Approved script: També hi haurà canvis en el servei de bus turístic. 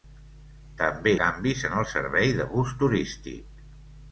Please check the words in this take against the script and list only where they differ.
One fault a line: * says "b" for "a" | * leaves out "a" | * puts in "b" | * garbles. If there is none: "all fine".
* leaves out "hi haurà"